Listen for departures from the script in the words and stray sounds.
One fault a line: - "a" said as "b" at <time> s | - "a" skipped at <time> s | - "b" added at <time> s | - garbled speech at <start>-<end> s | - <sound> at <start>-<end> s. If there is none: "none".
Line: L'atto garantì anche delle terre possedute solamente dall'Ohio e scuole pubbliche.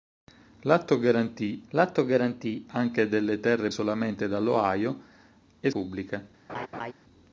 - "l'atto garantì" added at 1.7 s
- "possedute" skipped at 3.7 s
- "scuole" skipped at 5.7 s
- laugh at 6.5-6.9 s